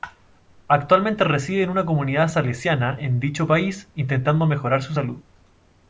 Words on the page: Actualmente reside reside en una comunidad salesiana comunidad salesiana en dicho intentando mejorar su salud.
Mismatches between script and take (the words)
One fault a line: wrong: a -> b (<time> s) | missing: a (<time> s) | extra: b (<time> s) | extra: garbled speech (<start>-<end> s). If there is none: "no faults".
missing: reside (1.6 s)
missing: comunidad salesiana (3.0 s)
extra: país (3.5 s)